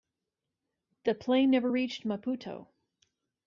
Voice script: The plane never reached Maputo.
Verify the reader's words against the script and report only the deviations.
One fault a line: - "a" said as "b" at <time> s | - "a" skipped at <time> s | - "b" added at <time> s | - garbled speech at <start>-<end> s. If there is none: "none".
none